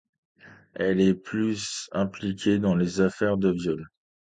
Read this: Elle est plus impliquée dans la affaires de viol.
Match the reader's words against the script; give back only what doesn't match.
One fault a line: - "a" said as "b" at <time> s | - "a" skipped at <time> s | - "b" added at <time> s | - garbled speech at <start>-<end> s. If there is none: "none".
- "la" said as "les" at 2.8 s